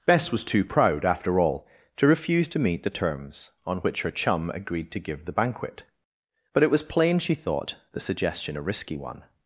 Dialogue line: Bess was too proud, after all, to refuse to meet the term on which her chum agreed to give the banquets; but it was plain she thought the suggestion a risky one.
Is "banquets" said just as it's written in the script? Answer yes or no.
no